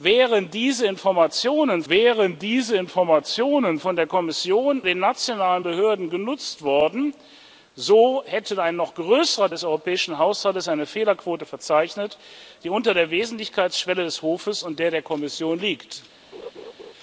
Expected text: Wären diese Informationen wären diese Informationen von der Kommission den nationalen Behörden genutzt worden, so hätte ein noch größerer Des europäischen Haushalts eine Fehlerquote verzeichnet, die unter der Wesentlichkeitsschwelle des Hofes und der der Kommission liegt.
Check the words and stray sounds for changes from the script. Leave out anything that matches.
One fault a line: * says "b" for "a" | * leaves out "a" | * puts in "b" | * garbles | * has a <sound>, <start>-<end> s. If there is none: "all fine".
* has a laugh, 16.3-16.9 s